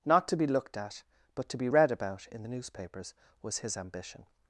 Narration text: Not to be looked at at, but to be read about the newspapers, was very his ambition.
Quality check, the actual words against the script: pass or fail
fail